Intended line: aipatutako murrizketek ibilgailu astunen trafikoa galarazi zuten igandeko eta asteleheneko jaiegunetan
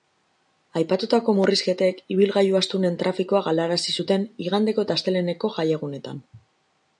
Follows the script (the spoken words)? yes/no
yes